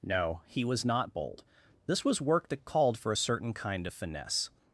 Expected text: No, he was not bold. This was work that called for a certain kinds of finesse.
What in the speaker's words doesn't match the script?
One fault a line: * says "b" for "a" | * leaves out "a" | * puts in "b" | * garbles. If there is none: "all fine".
* says "kind" for "kinds"